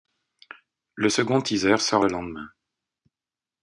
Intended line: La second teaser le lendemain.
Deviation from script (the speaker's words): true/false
true